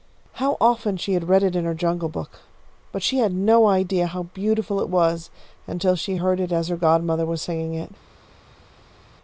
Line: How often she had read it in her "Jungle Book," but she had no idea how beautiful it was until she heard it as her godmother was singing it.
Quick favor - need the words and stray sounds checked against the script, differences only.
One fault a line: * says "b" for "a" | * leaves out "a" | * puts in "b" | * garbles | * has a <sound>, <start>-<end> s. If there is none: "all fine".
all fine